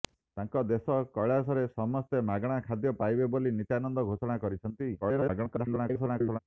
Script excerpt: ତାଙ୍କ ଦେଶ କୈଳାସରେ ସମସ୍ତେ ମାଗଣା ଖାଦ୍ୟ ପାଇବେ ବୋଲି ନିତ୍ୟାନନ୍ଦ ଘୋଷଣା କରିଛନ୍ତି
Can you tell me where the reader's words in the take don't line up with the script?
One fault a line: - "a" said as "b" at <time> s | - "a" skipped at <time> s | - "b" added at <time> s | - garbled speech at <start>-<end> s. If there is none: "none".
- garbled speech at 5.0-6.4 s